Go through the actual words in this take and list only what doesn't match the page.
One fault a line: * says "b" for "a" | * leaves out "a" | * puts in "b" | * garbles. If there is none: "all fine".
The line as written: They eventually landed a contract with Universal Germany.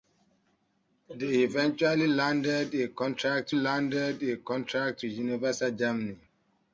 * puts in "landed a contract"